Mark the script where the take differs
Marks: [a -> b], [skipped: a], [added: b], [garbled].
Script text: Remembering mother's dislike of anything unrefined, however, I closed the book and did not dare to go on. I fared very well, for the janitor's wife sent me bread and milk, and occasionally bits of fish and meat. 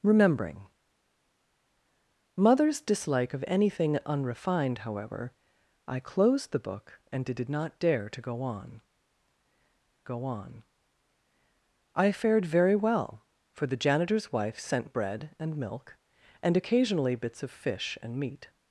Remembering mother's dislike of anything unrefined, however, I closed the book and did [added: did] not dare to go on. [added: go on] I fared very well, for the janitor's wife sent [skipped: me] bread and milk, and occasionally bits of fish and meat.